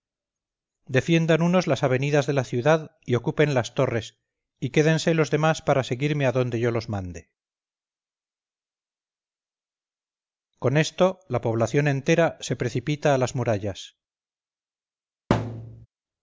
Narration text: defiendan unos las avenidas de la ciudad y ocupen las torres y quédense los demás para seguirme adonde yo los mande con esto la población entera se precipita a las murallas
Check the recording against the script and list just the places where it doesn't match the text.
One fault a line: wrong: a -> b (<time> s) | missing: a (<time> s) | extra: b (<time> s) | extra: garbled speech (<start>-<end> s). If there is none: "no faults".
no faults